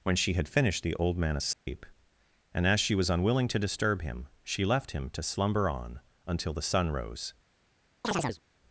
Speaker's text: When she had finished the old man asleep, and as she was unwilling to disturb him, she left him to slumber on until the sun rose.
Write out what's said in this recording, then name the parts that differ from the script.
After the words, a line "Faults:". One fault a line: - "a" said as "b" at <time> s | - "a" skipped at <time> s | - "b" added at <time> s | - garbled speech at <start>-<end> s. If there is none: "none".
When she had finished the old man asleep, and as she was unwilling to disturb him, she left him to slumber on until the sun rose.
Faults:
none